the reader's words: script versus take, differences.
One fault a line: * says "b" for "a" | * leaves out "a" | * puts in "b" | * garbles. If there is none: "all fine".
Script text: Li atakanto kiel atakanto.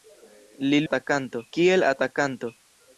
all fine